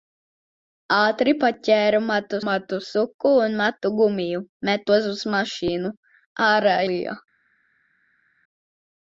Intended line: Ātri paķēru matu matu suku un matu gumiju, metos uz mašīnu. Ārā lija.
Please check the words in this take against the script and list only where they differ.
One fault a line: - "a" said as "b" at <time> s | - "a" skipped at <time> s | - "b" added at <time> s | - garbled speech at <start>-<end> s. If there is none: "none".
none